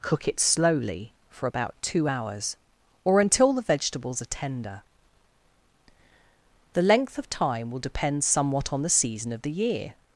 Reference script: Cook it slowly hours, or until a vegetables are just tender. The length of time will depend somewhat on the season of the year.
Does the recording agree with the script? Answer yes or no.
no